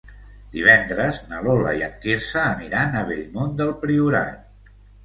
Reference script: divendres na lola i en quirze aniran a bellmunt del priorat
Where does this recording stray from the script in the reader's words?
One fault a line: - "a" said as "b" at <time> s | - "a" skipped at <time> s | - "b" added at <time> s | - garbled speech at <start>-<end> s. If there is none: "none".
none